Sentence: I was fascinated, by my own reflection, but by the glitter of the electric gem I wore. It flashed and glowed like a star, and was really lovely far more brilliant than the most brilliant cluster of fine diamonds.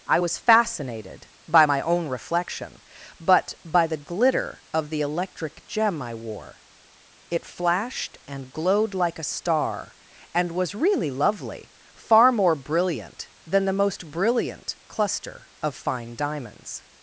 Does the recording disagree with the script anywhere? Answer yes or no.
no